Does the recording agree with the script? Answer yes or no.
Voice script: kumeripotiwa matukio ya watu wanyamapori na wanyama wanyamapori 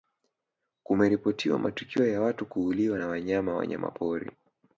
no